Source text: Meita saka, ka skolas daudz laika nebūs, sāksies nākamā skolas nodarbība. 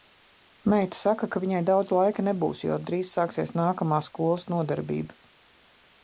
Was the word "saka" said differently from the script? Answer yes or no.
no